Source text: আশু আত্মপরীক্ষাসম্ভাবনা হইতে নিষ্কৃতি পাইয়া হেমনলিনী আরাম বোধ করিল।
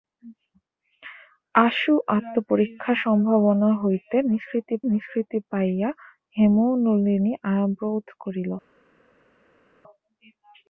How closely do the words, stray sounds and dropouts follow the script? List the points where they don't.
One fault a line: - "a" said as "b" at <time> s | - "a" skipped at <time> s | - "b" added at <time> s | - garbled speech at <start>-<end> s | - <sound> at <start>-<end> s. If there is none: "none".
- "নিষ্কৃতি" added at 4.9 s